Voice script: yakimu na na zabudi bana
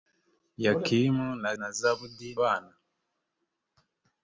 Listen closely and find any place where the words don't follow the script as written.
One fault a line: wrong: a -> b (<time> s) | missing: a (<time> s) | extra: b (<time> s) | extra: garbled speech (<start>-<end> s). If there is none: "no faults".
no faults